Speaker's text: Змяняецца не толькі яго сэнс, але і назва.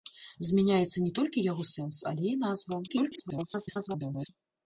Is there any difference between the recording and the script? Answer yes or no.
yes